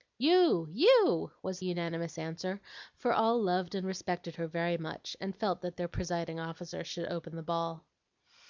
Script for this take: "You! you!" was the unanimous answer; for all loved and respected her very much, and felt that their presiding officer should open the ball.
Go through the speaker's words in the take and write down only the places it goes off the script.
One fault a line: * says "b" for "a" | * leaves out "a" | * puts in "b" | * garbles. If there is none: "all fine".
* leaves out "the"